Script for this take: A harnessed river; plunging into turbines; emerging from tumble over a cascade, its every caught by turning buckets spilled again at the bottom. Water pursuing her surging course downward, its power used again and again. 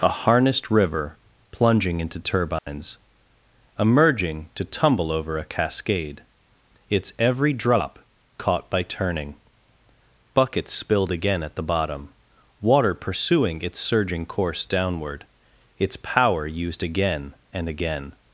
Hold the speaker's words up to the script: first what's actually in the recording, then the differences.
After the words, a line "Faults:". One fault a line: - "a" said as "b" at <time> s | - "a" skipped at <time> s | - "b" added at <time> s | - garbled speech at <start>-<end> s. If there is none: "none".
A harnessed river; plunging into turbines; emerging to tumble over a cascade, its every drop caught by turning buckets spilled again at the bottom. Water pursuing its surging course downward, its power used again and again.
Faults:
- "from" said as "to" at 4.5 s
- "drop" added at 7.5 s
- "her" said as "its" at 13.6 s